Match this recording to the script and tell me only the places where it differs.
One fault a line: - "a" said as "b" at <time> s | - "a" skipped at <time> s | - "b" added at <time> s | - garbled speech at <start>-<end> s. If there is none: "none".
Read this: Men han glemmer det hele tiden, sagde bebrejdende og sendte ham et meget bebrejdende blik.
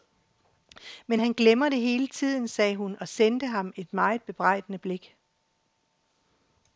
- "bebrejdende" said as "hun" at 2.8 s